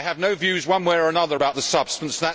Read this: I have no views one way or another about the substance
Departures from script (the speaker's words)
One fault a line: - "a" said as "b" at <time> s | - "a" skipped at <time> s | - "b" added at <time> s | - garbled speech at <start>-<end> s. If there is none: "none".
none